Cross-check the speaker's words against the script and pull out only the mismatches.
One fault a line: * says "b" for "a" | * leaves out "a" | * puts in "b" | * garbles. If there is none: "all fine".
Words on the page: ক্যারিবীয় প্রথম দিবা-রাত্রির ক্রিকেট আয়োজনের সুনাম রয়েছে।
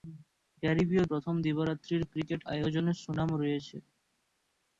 all fine